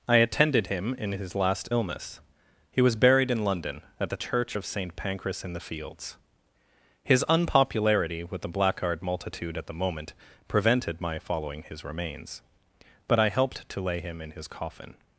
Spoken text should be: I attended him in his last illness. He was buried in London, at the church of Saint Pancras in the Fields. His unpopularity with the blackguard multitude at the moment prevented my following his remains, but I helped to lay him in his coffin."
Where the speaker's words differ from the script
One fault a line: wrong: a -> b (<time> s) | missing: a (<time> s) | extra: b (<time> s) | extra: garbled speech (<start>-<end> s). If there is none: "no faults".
no faults